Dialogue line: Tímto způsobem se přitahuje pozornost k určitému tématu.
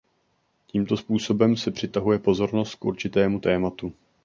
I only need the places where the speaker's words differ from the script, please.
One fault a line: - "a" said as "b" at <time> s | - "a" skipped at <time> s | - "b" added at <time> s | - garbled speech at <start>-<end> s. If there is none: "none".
none